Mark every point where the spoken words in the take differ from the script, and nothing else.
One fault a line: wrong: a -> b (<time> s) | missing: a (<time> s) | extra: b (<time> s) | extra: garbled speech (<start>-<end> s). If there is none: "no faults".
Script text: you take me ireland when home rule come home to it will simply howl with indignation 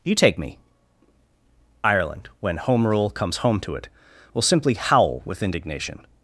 wrong: come -> comes (3.1 s)